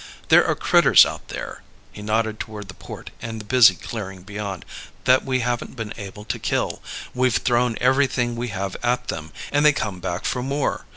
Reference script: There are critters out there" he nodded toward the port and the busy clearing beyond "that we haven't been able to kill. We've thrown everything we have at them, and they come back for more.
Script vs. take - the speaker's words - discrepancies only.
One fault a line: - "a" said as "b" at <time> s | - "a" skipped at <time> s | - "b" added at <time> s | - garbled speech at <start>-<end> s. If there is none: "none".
none